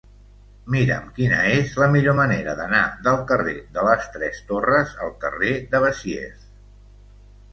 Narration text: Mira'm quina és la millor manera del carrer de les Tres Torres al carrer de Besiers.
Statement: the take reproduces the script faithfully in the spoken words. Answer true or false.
false